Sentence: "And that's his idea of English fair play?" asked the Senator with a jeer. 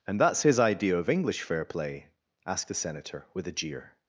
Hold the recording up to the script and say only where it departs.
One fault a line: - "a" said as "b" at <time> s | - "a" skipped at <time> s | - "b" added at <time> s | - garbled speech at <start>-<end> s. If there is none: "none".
none